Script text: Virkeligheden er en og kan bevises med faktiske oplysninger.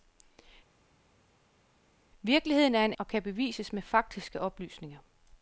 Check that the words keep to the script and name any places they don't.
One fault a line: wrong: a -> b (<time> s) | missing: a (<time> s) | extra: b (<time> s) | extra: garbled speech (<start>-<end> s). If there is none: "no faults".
no faults